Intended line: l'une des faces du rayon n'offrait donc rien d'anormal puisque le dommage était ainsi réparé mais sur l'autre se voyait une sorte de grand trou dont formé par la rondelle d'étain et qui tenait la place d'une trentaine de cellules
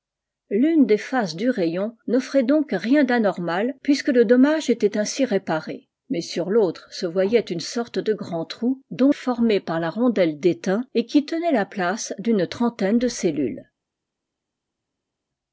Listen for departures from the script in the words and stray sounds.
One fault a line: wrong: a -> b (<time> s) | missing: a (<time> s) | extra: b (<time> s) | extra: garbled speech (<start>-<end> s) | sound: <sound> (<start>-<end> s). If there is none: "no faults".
no faults